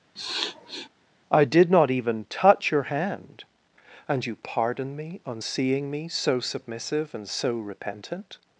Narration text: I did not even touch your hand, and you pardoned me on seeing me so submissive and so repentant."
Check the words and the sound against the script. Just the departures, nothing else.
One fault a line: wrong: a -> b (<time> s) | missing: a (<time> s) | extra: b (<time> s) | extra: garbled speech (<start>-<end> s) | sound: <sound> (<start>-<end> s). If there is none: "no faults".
sound: sniff (0.2-0.9 s)
wrong: pardoned -> pardon (4.4 s)